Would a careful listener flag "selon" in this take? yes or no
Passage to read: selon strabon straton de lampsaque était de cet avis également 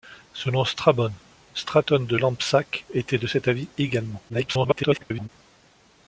no